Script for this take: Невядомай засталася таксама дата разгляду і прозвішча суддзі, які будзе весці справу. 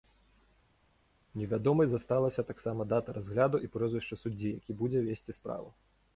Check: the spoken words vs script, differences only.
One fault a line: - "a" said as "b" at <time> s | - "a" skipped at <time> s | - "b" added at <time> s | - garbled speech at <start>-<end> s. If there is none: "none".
none